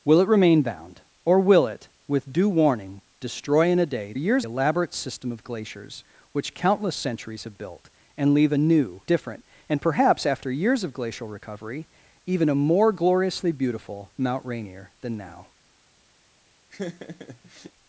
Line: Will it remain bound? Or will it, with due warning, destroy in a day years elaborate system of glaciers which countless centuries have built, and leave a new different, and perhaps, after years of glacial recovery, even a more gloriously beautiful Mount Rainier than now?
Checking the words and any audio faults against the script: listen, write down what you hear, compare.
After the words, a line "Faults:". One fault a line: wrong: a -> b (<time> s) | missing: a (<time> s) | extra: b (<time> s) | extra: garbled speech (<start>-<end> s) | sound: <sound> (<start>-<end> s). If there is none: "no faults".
Will it remain bound? Or will it, with due warning, destroy in a day years elaborate system of glaciers which countless centuries have built, and leave a new different, and perhaps, after years of glacial recovery, even a more gloriously beautiful Mount Rainier than now?
Faults:
sound: laugh (16.7-17.7 s)